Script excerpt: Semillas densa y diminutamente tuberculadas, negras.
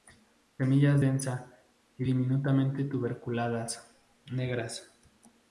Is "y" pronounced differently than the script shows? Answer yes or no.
no